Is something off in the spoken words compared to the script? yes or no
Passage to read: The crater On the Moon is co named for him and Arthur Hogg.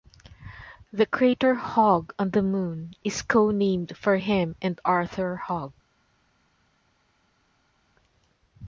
yes